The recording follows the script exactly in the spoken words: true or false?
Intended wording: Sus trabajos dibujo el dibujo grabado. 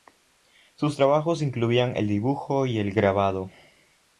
false